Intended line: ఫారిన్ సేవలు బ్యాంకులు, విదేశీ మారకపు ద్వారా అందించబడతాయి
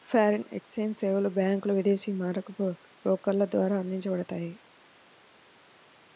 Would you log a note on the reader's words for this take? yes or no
yes